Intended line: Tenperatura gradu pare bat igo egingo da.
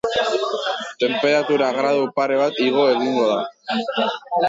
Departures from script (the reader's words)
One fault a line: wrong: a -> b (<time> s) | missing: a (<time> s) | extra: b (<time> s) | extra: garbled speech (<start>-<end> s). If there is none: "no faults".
no faults